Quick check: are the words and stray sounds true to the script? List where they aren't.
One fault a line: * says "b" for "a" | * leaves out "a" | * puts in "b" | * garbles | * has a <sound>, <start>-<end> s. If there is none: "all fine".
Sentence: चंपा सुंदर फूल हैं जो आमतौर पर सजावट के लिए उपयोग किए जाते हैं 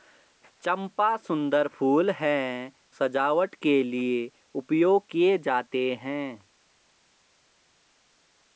* leaves out "जो आमतौर पर"